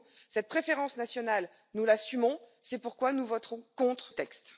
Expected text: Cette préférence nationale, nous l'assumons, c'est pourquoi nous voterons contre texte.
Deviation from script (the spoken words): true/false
false